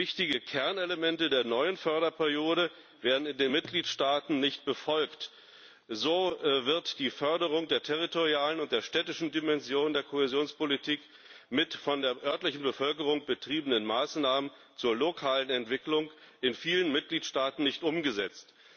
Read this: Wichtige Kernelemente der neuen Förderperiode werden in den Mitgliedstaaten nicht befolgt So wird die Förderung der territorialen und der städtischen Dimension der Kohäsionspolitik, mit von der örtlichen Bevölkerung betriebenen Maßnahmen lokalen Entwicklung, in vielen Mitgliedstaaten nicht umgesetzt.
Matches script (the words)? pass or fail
fail